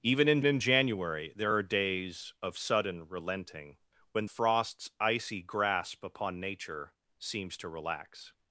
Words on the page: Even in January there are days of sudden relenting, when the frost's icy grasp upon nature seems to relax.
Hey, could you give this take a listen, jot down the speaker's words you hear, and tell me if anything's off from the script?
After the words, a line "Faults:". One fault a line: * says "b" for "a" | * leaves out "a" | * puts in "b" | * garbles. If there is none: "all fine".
Even in in January there are days of sudden relenting, when frost's icy grasp upon nature seems to relax.
Faults:
* puts in "in"
* leaves out "the"